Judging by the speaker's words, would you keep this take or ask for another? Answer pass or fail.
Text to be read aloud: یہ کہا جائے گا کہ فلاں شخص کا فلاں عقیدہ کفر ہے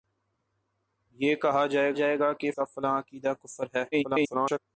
fail